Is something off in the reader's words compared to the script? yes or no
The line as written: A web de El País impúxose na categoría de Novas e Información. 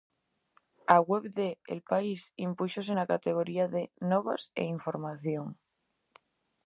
no